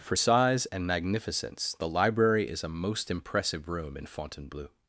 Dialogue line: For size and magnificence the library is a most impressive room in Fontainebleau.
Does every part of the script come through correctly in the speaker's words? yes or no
yes